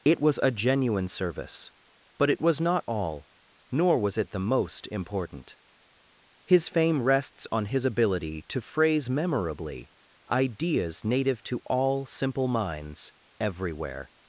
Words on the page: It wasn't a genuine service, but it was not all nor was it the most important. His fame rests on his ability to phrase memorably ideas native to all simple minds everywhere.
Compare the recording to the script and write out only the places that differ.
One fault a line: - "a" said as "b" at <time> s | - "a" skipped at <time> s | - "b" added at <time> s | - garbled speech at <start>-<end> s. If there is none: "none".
- "wasn't" said as "was" at 0.2 s